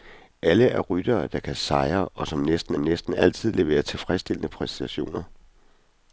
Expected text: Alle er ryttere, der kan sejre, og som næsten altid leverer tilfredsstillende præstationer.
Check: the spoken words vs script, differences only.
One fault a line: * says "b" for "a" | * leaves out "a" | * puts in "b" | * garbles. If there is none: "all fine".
* puts in "næsten"